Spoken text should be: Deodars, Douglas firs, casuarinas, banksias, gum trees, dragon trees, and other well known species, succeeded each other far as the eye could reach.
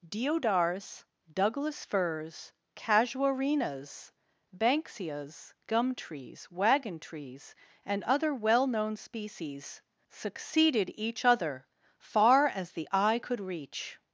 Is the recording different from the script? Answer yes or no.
yes